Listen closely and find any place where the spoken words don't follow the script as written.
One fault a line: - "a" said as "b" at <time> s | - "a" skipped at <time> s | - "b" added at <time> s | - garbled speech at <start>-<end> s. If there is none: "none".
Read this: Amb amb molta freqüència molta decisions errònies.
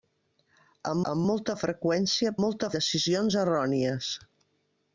none